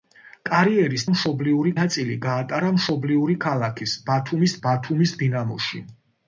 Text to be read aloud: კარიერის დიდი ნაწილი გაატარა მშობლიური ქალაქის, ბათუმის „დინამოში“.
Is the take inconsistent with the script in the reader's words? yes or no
yes